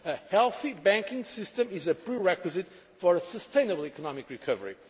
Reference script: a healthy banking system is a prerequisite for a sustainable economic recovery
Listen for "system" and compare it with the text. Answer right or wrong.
right